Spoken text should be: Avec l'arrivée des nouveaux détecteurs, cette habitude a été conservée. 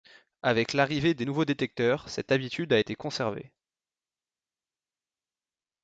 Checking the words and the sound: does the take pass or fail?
pass